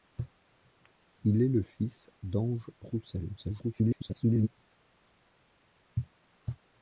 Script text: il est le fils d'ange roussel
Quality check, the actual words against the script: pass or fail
fail